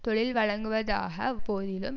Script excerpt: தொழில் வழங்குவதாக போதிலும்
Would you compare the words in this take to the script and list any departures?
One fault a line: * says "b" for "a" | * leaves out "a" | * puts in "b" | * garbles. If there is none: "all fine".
all fine